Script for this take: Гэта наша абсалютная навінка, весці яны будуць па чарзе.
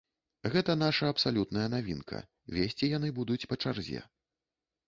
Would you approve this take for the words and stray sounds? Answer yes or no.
yes